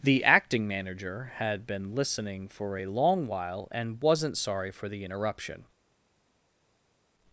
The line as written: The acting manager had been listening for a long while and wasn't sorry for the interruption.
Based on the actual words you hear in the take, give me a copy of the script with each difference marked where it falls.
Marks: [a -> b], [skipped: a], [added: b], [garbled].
The acting manager had been listening for a long while and wasn't sorry for the interruption.